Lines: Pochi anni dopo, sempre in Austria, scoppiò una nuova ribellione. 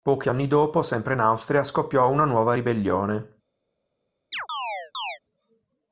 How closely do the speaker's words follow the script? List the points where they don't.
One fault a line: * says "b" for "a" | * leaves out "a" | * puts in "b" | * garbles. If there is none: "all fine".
all fine